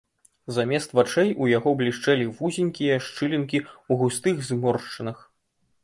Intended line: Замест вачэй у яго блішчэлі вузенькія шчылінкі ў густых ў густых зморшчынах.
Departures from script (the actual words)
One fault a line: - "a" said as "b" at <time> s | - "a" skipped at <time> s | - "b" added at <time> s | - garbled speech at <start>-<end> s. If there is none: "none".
- "ў густых" skipped at 4.3 s